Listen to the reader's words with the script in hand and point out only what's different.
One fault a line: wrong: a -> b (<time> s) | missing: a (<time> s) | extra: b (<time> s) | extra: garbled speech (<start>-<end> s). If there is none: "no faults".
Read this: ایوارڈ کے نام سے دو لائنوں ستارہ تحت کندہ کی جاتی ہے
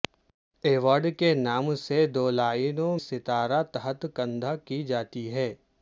no faults